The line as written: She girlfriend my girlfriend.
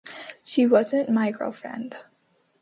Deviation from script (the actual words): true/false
true